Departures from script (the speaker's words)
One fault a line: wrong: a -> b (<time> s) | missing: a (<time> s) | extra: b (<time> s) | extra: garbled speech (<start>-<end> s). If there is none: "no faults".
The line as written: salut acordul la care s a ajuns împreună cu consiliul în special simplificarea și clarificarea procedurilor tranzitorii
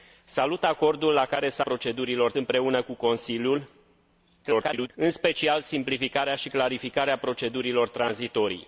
wrong: ajuns -> procedurilor (1.6 s)
extra: garbled speech (4.4-4.9 s)